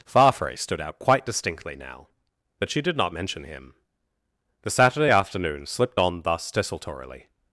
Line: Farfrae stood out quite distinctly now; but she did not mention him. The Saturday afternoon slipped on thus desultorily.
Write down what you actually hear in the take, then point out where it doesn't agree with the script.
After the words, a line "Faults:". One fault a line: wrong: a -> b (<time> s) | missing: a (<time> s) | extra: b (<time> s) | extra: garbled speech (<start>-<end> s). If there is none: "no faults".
Farfrae stood out quite distinctly now; but she did not mention him. The Saturday afternoon slipped on thus desultorily.
Faults:
no faults